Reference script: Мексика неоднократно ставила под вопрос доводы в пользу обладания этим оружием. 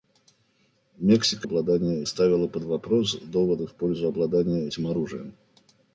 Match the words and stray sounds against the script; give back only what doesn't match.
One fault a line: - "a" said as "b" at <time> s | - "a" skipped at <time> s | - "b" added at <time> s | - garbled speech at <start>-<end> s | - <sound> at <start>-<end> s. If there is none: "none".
- "неоднократно" said as "обладания" at 1.4 s